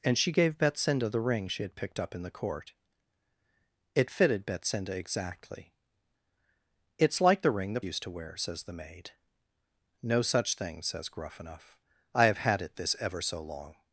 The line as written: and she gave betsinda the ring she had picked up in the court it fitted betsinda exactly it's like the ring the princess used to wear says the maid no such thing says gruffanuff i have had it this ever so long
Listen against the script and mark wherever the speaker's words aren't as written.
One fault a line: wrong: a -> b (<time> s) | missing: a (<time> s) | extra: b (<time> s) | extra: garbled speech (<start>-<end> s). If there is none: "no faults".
missing: princess (7.8 s)